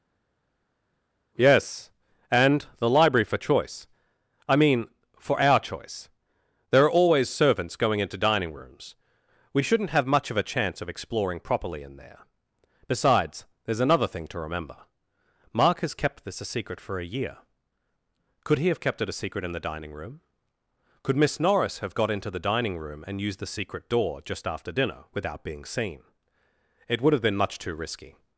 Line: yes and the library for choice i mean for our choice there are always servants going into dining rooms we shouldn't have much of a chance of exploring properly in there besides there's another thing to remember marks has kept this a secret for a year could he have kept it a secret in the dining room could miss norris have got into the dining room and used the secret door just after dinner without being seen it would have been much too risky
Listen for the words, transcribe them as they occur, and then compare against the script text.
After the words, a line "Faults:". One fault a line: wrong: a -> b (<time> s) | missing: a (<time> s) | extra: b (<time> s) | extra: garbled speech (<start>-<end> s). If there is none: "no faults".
yes and the library for choice i mean for our choice there are always servants going into dining rooms we shouldn't have much of a chance of exploring properly in there besides there's another thing to remember mark has kept this a secret for a year could he have kept it a secret in the dining room could miss norris have got into the dining room and used the secret door just after dinner without being seen it would have been much too risky
Faults:
wrong: marks -> mark (15.5 s)